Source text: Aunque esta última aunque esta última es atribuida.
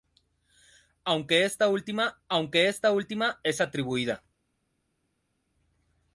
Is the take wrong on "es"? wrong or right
right